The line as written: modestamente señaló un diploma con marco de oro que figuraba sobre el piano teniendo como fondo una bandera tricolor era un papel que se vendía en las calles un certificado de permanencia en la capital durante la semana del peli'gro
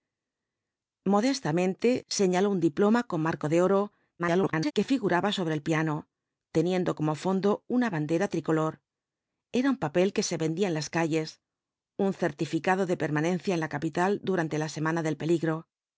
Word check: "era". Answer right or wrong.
right